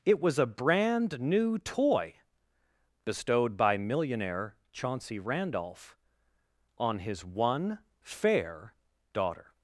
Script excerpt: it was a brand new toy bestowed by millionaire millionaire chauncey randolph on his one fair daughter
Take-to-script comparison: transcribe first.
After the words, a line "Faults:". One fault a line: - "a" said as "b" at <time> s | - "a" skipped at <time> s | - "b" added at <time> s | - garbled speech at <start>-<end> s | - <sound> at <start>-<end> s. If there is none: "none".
it was a brand new toy bestowed by millionaire chauncey randolph on his one fair daughter
Faults:
- "millionaire" skipped at 4.6 s